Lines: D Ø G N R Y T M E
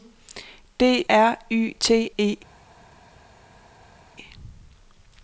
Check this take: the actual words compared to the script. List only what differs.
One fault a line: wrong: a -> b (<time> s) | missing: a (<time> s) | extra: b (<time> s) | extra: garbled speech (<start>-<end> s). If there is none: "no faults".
missing: Ø G N (1.0 s)
missing: M (2.1 s)